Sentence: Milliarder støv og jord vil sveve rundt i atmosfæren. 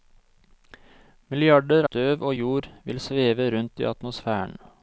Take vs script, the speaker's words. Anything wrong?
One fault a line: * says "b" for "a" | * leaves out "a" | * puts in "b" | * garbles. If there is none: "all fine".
all fine